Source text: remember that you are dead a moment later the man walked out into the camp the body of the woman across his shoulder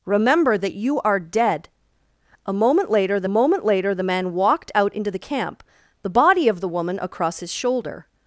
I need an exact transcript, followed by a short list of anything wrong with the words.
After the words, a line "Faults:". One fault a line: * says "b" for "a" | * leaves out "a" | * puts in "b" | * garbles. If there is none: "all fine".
remember that you are dead a moment later the moment later the man walked out into the camp the body of the woman across his shoulder
Faults:
* puts in "moment later the"